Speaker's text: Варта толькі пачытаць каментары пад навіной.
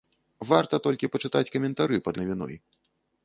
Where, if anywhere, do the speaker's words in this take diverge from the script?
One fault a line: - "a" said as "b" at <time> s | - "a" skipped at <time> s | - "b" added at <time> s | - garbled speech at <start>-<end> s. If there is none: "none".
none